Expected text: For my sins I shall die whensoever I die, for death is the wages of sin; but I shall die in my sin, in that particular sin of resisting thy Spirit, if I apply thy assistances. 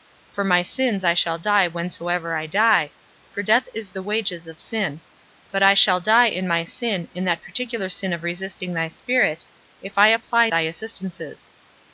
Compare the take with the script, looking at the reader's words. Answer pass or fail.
pass